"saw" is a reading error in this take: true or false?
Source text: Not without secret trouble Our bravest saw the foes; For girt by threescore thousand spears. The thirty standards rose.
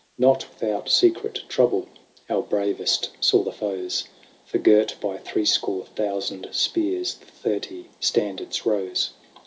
false